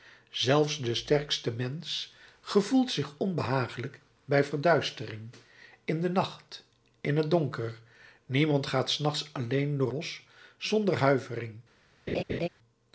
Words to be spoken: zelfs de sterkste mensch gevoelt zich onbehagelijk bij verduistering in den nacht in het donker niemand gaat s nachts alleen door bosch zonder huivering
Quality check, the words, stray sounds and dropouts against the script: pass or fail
fail